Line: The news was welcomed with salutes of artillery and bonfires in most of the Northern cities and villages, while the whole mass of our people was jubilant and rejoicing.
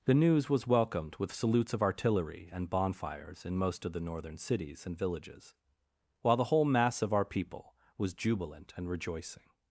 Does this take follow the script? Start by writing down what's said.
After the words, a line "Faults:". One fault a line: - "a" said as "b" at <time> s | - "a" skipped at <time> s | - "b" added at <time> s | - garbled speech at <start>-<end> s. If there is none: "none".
The news was welcomed with salutes of artillery and bonfires in most of the Northern cities and villages, while the whole mass of our people was jubilant and rejoicing.
Faults:
none